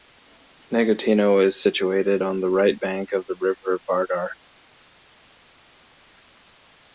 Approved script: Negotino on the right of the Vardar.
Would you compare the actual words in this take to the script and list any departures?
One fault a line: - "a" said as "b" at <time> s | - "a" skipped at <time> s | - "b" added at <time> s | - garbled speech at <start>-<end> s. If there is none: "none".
- "is situated" added at 1.4 s
- "bank" added at 2.8 s
- "river" added at 3.4 s